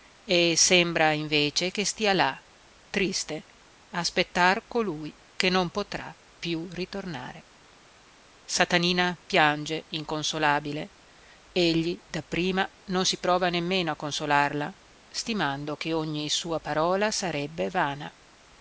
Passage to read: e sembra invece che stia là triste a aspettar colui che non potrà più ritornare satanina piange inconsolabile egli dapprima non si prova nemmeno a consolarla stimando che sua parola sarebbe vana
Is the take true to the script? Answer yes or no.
no